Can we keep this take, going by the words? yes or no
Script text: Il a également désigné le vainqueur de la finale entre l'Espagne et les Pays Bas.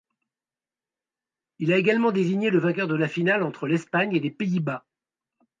yes